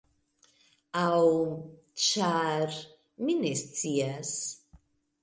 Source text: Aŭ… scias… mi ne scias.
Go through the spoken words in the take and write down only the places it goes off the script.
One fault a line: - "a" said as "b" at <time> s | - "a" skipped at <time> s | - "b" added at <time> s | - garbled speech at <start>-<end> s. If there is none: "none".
- "scias" said as "ĉar" at 2.0 s